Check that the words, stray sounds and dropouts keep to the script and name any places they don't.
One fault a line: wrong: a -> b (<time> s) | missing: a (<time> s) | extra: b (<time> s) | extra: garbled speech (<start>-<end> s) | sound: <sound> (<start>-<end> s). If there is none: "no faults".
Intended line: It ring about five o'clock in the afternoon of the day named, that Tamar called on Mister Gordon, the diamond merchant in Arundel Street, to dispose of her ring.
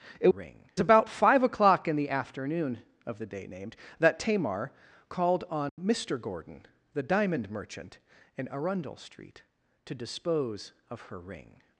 sound: dropout (5.7-5.8 s)